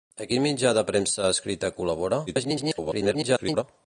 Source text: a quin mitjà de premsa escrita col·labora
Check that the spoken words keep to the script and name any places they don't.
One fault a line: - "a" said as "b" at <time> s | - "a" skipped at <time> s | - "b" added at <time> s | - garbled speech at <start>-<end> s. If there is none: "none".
- garbled speech at 2.3-3.6 s